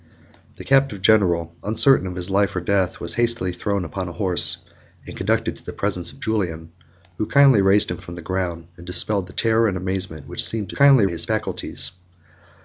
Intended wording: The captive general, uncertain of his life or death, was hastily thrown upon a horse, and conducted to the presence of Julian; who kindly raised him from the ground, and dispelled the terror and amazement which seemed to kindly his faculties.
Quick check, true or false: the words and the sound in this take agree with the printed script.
true